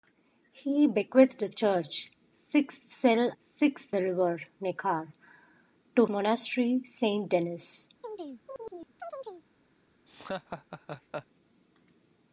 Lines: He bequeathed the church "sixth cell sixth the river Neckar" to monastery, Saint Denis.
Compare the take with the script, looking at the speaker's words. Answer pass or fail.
pass